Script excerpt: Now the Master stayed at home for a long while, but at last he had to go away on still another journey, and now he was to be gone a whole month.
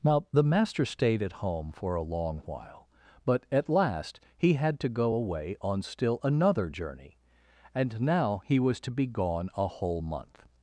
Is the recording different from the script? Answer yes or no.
no